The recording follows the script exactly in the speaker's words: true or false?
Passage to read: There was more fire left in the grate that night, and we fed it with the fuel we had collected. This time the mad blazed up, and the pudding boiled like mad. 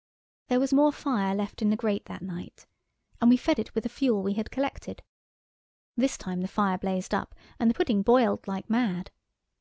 false